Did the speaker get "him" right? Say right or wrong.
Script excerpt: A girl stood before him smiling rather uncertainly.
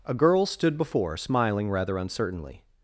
wrong